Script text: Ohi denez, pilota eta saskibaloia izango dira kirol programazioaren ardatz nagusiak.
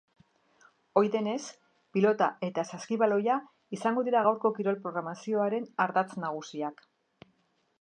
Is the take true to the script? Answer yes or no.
no